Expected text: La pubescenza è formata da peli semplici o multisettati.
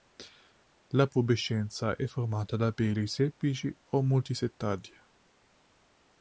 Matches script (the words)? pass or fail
pass